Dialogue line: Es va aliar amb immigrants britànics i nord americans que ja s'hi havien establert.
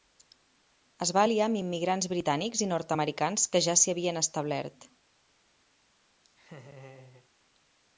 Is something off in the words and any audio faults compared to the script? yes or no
yes